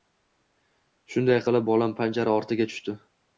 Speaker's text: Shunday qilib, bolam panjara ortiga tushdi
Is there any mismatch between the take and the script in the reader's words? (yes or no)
no